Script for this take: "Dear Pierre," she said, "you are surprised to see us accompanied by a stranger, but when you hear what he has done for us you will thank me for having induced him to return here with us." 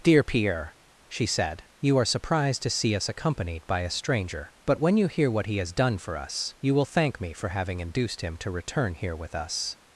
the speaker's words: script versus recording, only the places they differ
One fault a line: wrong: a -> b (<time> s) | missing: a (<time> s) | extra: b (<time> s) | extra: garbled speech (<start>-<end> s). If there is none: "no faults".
no faults